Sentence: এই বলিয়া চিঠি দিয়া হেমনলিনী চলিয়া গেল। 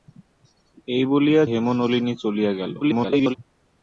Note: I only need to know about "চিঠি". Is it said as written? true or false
false